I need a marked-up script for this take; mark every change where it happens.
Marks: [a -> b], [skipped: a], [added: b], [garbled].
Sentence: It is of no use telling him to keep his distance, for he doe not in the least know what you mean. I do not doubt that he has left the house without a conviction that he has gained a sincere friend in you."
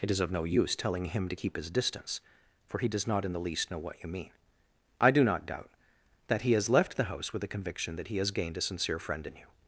It is of no use telling him to keep his distance, for he [doe -> does] not in the least know what you mean. I do not doubt that he has left the house [without -> with] a conviction that he has gained a sincere friend in you."